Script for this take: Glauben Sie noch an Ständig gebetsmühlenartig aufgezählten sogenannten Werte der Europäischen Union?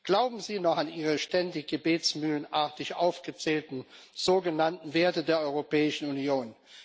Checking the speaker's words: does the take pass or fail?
fail